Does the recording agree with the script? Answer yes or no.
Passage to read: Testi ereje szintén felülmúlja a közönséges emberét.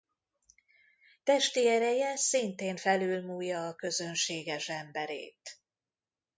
yes